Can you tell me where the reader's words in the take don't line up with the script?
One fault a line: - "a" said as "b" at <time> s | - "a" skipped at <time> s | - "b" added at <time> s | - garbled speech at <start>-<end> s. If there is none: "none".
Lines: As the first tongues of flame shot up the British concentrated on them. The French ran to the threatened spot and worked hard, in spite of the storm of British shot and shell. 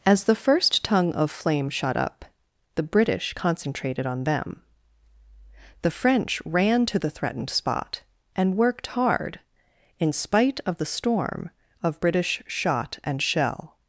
- "tongues" said as "tongue" at 0.8 s